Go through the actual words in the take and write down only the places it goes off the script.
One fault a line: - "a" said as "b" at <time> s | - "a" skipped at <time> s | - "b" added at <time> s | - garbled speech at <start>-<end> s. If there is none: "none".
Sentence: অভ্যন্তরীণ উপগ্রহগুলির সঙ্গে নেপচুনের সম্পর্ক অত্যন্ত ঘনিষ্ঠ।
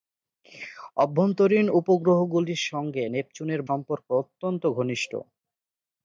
none